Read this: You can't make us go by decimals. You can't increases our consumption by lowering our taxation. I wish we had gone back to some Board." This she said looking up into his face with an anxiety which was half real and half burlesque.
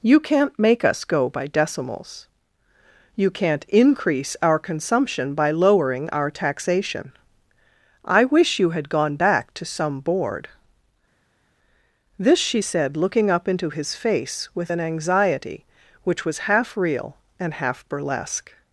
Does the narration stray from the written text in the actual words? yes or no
yes